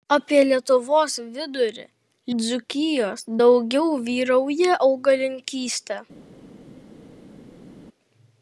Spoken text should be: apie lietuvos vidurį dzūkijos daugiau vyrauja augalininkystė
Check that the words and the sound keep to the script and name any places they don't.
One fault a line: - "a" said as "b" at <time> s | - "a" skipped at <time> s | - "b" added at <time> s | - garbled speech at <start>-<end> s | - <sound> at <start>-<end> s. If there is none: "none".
none